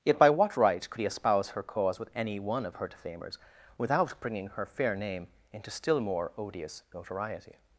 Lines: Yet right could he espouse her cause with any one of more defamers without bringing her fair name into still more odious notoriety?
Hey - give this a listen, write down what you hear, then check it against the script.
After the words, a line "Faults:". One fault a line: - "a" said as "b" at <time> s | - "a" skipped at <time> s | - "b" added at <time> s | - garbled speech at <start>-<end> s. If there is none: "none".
Yet by what right could he espouse her cause with any one of her defamers without bringing her fair name into still more odious notoriety?
Faults:
- "by what" added at 0.2 s
- "more" said as "her" at 2.8 s